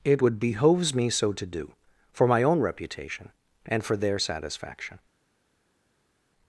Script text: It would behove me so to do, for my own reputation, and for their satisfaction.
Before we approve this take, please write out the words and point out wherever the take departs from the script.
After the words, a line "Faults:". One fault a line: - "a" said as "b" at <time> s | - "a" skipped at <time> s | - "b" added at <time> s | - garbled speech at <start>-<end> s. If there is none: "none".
It would behoves me so to do, for my own reputation, and for their satisfaction.
Faults:
- "behove" said as "behoves" at 0.4 s